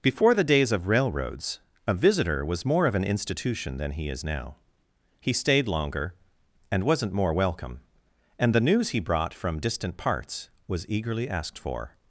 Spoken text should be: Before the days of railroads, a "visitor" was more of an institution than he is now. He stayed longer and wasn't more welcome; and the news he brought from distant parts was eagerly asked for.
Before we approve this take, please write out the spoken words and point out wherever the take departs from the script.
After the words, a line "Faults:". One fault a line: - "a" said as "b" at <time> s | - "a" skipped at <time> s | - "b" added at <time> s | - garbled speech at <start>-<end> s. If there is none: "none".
Before the days of railroads, a "visitor" was more of an institution than he is now. He stayed longer and wasn't more welcome; and the news he brought from distant parts was eagerly asked for.
Faults:
none